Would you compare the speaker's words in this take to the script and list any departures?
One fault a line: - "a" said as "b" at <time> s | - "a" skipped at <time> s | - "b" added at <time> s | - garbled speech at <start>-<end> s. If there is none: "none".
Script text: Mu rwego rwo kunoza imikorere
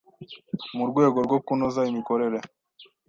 none